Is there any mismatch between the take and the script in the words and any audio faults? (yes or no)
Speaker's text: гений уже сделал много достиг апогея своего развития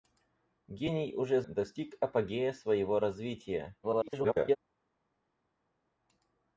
yes